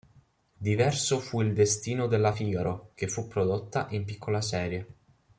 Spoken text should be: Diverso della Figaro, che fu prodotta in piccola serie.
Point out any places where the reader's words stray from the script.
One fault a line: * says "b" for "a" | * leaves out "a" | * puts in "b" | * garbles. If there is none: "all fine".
* puts in "fu il destino"